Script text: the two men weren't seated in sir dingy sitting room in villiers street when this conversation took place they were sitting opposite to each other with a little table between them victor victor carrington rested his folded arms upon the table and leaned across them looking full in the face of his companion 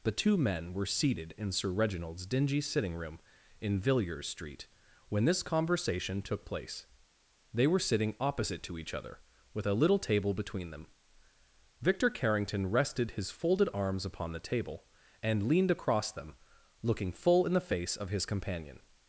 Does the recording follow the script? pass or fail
fail